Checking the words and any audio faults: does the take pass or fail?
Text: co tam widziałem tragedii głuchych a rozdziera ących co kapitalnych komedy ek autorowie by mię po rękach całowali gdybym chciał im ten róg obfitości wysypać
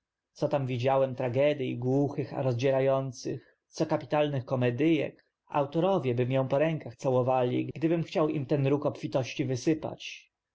pass